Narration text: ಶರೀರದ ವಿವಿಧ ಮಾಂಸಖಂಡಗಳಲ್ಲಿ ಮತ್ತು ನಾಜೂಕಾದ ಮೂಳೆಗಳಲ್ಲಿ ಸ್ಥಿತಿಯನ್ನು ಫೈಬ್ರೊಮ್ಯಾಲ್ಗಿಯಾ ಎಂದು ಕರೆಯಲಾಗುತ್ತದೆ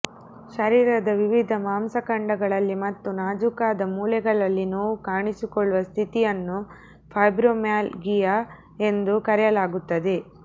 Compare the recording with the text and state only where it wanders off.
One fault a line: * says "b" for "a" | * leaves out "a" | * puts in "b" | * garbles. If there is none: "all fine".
* puts in "ನೋವು ಕಾಣಿಸಿಕೊಳ್ಳುವ"